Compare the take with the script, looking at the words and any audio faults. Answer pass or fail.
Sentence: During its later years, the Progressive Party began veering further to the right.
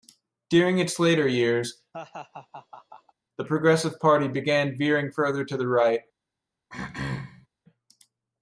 fail